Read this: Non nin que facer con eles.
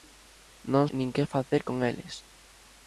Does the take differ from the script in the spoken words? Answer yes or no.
no